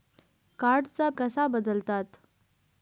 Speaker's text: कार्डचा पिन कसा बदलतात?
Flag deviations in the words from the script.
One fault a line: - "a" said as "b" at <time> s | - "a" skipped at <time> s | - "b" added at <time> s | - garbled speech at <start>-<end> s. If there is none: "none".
- "पिन" skipped at 1.1 s